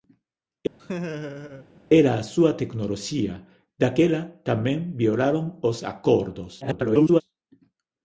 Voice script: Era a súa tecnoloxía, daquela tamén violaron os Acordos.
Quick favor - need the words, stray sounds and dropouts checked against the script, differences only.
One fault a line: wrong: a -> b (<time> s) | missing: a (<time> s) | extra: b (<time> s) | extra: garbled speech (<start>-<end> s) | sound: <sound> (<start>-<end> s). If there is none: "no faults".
sound: laugh (0.8-1.7 s)
extra: garbled speech (6.6-7.2 s)